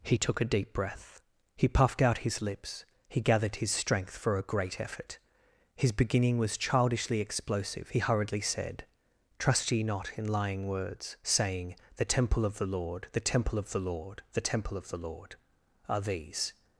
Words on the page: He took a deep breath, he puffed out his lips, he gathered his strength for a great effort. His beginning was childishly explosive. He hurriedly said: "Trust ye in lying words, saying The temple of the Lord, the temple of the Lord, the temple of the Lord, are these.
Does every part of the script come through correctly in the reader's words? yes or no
no